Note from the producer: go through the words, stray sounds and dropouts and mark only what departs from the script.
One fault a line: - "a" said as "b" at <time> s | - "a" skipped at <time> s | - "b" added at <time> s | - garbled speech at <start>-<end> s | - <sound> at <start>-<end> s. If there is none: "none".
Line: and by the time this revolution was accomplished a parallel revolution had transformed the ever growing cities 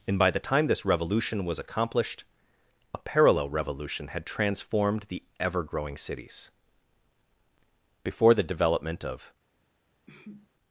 - "before the development of" added at 8.2 s
- sneeze at 10.1-10.5 s